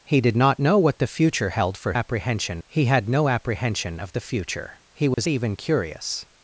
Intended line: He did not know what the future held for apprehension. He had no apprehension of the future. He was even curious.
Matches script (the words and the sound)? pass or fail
fail